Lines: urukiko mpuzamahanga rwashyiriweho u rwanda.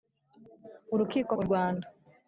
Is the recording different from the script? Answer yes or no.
yes